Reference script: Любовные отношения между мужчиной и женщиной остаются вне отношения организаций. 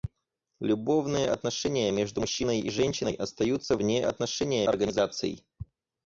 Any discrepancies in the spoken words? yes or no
no